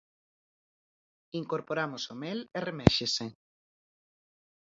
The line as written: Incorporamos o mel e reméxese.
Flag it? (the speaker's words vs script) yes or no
no